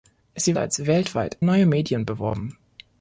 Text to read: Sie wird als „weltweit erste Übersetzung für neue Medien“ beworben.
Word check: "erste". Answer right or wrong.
wrong